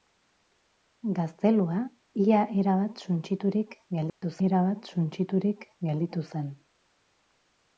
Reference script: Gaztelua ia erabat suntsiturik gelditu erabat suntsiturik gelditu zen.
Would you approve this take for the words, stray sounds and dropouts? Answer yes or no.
no